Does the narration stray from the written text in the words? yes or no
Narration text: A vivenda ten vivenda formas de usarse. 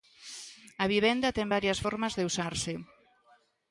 yes